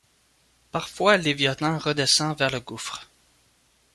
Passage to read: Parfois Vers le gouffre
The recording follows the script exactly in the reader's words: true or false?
false